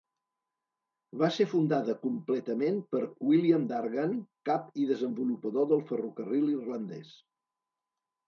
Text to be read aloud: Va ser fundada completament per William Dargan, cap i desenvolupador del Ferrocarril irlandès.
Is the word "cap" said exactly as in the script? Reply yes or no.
yes